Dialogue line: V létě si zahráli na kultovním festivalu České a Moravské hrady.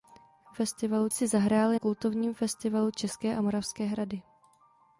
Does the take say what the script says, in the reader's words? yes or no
no